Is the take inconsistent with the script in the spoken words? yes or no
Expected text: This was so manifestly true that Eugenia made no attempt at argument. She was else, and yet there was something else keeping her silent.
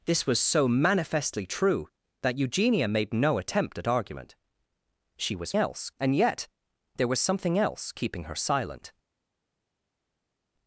no